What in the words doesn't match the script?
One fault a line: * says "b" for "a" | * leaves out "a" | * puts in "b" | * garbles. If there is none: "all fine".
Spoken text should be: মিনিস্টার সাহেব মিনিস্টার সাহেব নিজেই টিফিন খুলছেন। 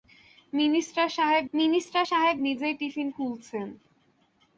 all fine